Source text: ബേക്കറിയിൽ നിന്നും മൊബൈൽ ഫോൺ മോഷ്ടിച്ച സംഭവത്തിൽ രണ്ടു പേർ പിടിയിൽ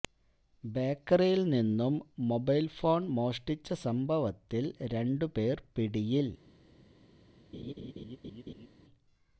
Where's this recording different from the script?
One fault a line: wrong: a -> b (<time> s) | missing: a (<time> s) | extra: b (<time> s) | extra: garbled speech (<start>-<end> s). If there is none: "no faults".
no faults